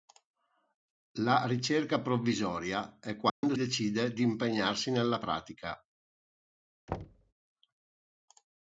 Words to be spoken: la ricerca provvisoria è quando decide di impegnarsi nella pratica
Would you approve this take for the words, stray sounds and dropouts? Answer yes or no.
no